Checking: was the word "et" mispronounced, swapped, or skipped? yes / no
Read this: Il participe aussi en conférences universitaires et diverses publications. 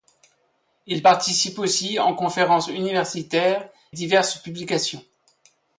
yes